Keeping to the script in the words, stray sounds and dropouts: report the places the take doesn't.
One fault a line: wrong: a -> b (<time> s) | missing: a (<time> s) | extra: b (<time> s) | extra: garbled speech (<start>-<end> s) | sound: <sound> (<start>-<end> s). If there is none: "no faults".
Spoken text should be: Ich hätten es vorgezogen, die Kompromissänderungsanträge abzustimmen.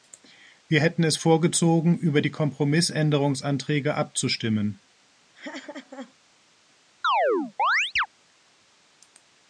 wrong: Ich -> Wir (0.7 s)
extra: über (1.9 s)
sound: laugh (5.3-6.1 s)
sound: chirp (7.0-8.1 s)